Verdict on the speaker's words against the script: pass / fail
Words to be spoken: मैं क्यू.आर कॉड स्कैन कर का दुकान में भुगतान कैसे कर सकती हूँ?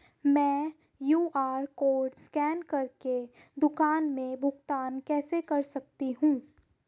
fail